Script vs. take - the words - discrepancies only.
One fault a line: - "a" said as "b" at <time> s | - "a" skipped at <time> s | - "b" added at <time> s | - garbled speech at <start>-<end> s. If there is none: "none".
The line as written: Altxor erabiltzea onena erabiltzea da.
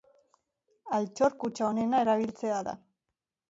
- "erabiltzea" said as "kutxa" at 1.4 s